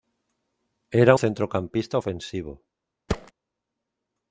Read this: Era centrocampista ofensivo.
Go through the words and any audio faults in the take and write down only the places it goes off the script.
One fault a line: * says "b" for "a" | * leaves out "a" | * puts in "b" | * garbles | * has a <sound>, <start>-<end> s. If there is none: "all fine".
* has a thud, 3.1-3.3 s